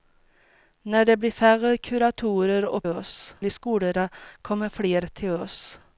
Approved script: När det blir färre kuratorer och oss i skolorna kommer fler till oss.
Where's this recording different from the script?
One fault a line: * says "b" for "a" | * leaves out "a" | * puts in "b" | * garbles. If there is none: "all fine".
all fine